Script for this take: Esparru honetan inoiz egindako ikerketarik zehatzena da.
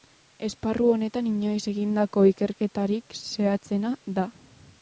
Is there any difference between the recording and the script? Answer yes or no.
no